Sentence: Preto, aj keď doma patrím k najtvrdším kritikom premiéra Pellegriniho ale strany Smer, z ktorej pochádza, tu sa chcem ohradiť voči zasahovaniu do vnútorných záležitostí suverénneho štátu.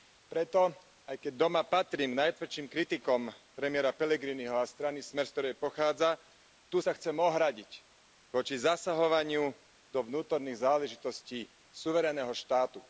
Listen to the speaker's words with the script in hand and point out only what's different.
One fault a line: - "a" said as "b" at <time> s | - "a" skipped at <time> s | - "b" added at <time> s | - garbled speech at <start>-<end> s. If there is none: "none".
- "ale" said as "a" at 4.5 s